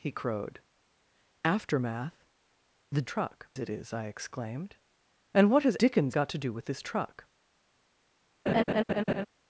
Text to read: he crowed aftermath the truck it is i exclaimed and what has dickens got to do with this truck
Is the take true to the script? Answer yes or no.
yes